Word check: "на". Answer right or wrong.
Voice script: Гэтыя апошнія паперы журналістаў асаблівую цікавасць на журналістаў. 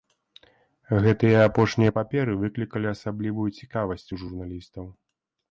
wrong